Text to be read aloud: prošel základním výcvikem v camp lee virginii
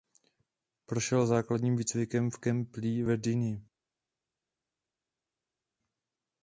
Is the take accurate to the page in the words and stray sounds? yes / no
yes